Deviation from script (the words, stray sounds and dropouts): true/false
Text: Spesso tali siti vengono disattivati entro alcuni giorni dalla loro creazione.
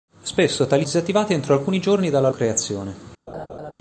true